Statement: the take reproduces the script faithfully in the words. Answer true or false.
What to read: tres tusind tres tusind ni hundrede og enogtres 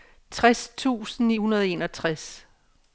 false